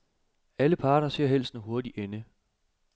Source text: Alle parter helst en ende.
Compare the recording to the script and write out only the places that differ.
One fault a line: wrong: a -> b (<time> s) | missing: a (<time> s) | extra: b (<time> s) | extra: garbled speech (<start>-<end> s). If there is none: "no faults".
extra: ser (1.1 s)
extra: hurtig (1.6 s)